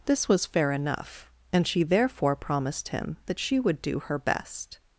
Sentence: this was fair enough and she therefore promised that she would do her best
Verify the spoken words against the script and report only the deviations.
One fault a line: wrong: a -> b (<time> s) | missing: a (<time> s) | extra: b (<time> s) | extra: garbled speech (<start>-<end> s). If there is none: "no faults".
extra: him (2.9 s)